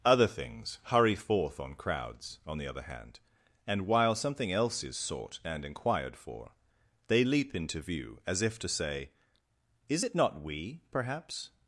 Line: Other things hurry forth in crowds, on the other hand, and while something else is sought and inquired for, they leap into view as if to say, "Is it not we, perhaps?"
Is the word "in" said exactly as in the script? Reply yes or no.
no